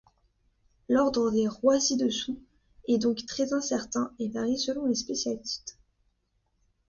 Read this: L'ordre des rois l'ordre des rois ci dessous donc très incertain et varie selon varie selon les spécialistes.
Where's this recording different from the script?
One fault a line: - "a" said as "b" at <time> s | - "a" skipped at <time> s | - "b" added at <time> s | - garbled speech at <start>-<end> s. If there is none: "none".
- "l'ordre des rois" skipped at 1.8 s
- "est" added at 2.9 s
- "varie selon" skipped at 4.8 s